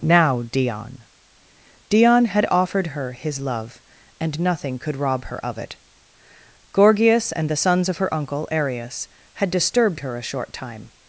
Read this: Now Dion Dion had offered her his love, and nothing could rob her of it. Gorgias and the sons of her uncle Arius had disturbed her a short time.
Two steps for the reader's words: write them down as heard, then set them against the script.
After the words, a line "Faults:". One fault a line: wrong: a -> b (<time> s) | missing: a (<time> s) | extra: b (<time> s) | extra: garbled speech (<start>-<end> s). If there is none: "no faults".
Now Dion Dion had offered her his love, and nothing could rob her of it. Gorgias and the sons of her uncle Arius had disturbed her a short time.
Faults:
no faults